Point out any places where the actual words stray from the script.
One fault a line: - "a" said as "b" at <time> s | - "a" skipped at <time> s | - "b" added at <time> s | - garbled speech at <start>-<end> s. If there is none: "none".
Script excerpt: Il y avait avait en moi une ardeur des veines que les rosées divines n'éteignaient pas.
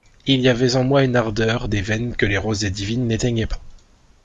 - "avait" skipped at 0.8 s